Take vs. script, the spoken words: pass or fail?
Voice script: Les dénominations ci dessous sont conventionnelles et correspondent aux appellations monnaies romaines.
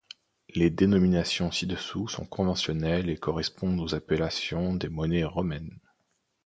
fail